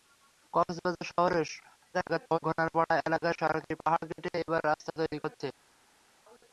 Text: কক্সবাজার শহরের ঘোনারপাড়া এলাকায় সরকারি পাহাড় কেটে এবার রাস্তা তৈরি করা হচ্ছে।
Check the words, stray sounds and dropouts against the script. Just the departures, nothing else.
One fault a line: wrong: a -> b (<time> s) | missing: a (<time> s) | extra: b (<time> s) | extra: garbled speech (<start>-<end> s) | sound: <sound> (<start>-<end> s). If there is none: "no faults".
extra: garbled speech (1.9-2.4 s)
missing: করা (5.2 s)